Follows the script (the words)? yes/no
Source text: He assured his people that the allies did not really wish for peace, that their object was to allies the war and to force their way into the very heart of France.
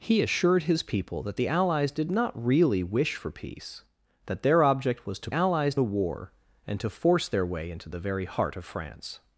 yes